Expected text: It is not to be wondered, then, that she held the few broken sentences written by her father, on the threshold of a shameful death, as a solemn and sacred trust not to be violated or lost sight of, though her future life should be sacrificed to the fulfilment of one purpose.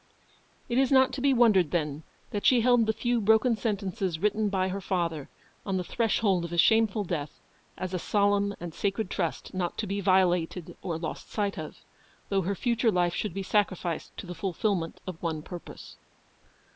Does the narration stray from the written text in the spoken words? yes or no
no